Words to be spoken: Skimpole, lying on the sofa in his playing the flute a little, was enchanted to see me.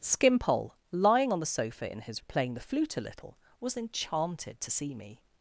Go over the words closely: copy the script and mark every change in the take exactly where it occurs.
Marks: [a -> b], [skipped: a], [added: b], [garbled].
Skimpole, lying on the sofa in his playing the flute a little, was enchanted to see me.